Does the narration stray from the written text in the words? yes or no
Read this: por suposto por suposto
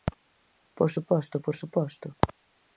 no